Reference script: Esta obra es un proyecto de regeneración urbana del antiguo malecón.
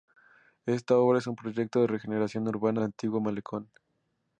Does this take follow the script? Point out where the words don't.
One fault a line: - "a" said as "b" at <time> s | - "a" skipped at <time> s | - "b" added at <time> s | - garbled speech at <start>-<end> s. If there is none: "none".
- "del" skipped at 2.8 s